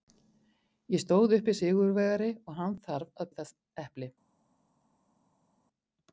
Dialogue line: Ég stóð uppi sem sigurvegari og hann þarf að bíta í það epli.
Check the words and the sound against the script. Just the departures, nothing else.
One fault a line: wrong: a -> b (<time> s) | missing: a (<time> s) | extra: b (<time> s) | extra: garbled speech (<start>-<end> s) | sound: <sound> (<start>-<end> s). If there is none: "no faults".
missing: sem (1.5 s)
missing: bíta (3.3 s)